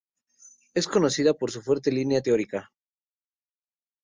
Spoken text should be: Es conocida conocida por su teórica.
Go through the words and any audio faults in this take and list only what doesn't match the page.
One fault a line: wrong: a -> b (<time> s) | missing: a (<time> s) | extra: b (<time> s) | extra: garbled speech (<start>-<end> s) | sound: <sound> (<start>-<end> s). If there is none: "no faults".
missing: conocida (1.4 s)
extra: fuerte línea (1.6 s)